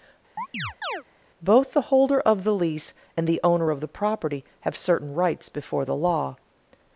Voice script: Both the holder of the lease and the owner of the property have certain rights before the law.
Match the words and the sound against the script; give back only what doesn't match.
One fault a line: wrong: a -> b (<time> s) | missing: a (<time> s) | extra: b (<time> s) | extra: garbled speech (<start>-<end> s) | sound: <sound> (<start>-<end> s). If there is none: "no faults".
sound: chirp (0.4-1.0 s)